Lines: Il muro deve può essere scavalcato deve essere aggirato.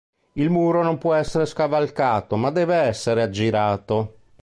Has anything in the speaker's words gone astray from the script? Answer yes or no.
yes